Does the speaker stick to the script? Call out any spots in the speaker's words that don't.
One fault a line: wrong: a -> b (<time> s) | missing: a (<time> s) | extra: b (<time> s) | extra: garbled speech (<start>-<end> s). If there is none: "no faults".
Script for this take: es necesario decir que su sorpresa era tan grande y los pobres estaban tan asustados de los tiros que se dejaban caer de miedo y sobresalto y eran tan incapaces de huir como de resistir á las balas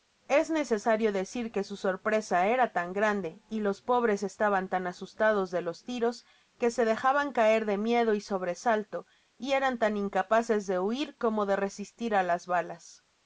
no faults